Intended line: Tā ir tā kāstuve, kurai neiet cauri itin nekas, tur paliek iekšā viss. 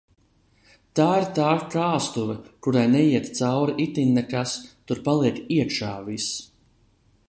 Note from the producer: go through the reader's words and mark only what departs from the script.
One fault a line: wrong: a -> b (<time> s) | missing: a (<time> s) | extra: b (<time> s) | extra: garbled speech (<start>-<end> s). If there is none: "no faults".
no faults